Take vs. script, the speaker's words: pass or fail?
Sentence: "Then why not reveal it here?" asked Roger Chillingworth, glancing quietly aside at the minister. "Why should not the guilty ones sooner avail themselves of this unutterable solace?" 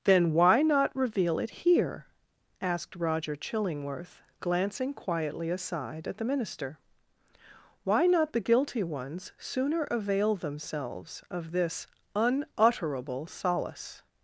fail